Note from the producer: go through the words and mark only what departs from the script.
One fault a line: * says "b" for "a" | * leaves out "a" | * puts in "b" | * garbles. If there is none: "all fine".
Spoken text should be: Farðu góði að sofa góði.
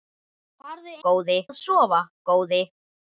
all fine